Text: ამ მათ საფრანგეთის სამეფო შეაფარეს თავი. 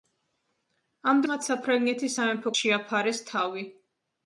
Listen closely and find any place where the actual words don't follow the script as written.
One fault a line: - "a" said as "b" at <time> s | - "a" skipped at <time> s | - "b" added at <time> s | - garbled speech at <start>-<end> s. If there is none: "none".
none